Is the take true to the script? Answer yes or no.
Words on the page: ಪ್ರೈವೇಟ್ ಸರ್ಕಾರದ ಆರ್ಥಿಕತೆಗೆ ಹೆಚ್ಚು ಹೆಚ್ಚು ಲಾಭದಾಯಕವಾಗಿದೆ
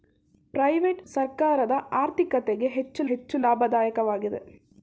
yes